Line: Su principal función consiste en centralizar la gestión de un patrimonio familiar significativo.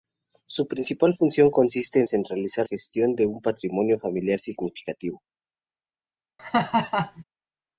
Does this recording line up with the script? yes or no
no